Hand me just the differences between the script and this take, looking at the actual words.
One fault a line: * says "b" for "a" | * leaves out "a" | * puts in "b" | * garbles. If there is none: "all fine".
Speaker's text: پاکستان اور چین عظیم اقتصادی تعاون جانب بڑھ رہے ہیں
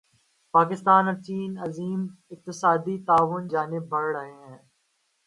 all fine